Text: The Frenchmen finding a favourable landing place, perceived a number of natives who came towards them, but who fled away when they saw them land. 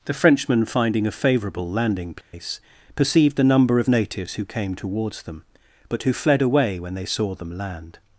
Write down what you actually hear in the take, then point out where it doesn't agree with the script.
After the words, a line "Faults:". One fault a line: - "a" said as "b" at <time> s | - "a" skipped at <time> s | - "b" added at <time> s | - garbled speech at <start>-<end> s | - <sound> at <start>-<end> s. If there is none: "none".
The Frenchmen finding a favourable landing place, perceived a number of natives who came towards them, but who fled away when they saw them land.
Faults:
- dropout at 2.2-2.3 s